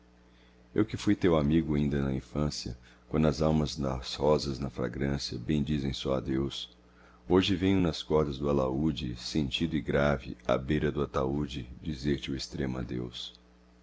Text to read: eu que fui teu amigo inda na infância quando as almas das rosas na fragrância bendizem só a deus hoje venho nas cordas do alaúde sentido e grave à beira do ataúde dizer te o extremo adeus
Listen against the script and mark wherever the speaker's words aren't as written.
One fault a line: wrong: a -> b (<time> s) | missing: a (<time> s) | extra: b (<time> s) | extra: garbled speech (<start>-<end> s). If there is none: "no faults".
no faults